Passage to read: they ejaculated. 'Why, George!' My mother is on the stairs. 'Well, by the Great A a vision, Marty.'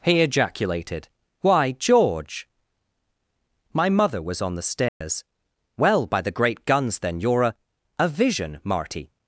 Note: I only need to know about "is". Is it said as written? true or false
false